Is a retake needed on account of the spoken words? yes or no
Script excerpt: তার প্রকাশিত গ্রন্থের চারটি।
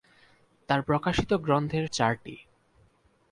no